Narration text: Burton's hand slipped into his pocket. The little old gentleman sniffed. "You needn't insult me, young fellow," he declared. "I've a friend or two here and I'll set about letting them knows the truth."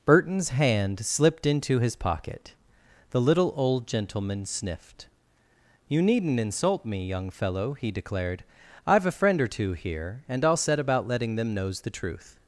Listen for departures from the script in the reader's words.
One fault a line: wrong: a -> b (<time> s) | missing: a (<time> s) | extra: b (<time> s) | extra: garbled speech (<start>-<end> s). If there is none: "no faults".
no faults